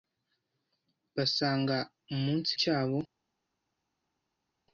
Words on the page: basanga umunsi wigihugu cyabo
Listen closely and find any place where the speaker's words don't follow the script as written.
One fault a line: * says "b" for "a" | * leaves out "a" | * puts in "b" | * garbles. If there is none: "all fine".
* leaves out "wigihugu"